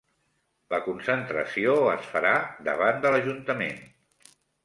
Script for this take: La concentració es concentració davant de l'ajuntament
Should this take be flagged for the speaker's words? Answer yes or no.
yes